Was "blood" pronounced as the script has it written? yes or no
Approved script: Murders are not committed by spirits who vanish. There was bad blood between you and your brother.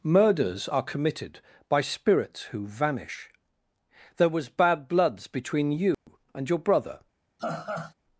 no